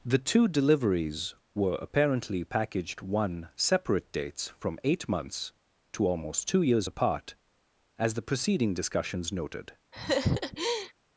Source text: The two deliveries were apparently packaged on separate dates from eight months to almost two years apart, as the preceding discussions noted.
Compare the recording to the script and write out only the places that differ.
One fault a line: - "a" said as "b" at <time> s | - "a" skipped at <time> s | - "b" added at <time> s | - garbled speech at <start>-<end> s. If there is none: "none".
- "on" said as "one" at 3.0 s